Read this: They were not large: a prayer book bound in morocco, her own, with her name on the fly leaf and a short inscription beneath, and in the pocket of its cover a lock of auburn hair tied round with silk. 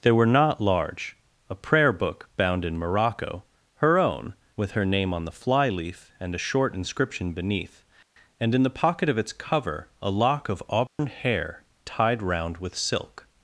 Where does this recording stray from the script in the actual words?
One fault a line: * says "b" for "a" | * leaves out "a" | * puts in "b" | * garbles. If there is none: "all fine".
all fine